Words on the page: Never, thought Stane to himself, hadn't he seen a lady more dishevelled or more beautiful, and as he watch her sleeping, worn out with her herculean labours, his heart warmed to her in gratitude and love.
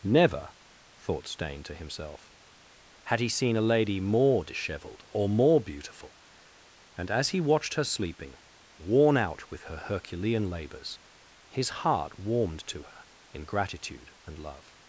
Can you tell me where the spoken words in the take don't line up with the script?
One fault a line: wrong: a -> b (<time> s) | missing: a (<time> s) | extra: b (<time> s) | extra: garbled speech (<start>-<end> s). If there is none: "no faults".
wrong: hadn't -> had (3.0 s)
wrong: watch -> watched (7.4 s)